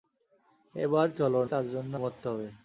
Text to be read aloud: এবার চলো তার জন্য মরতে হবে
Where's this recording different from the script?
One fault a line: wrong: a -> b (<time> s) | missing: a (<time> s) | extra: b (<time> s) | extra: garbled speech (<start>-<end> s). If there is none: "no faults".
no faults